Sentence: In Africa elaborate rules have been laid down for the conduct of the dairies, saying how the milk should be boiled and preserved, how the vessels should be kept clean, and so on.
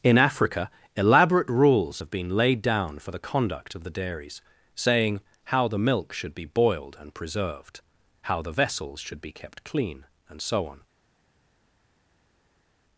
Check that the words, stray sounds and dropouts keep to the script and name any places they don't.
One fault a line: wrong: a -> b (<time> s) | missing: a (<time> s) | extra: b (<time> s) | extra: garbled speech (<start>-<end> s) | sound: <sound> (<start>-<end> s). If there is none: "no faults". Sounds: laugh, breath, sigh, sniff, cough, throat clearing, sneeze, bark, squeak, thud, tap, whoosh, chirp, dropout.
no faults